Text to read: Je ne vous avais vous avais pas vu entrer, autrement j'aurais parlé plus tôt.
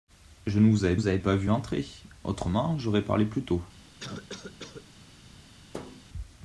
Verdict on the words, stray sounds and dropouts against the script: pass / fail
fail